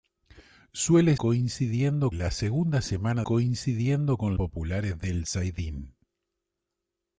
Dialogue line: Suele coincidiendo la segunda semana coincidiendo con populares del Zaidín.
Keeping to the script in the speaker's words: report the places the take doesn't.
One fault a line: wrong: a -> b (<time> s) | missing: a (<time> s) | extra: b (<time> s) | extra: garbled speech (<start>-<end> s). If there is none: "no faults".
no faults